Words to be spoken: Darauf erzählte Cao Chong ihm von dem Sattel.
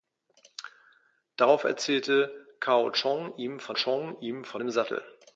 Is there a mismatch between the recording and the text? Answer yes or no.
yes